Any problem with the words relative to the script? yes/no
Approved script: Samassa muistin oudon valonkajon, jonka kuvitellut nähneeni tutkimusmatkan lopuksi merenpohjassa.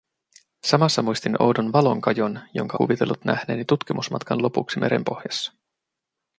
no